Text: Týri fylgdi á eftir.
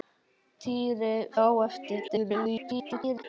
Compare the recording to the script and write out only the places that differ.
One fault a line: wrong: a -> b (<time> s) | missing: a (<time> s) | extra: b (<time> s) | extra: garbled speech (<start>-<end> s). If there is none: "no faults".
missing: fylgdi (1.1 s)
extra: garbled speech (2.1-3.2 s)